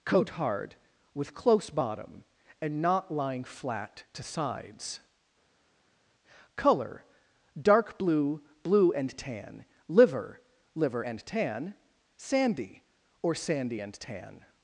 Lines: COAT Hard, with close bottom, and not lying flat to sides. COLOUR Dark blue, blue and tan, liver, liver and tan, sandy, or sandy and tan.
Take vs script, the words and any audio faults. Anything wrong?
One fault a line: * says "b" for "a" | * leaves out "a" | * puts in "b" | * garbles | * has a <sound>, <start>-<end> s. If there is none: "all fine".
all fine